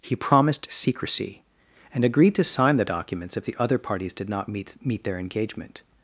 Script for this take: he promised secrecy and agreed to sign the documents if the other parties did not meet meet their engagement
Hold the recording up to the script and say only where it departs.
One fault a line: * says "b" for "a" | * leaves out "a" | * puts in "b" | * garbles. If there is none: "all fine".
all fine